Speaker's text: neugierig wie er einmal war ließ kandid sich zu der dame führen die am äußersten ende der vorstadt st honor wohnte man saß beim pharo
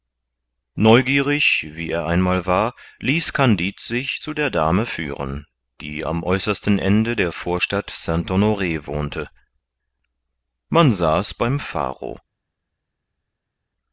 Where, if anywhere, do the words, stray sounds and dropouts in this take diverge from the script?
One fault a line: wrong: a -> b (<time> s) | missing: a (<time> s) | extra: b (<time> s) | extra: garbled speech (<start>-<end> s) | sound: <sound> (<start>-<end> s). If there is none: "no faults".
no faults